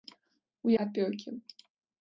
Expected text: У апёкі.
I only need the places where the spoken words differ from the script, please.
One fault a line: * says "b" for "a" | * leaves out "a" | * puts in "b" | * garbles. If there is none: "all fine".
all fine